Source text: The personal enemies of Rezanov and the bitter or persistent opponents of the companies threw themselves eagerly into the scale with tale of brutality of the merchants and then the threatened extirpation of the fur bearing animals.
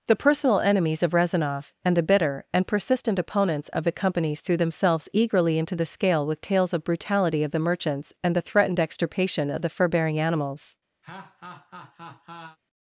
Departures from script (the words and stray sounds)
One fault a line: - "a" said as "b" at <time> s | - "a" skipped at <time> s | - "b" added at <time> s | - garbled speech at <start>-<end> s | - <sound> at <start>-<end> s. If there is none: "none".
- "or" said as "and" at 2.5 s
- "tale" said as "tales" at 6.4 s
- "then" skipped at 8.3 s
- laugh at 11.0-12.6 s